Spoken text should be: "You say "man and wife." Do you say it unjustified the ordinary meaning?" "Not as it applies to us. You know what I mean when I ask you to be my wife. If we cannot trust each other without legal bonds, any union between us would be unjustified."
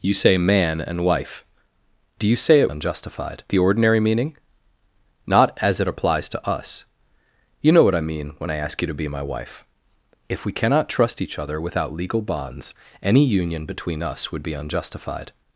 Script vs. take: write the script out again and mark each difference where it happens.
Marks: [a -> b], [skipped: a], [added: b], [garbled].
"You say "man and wife." Do you say it unjustified the ordinary meaning?" "Not as it applies to us. You know what I mean when I ask you to be my wife. If we cannot trust each other without legal bonds, any union between us would be unjustified."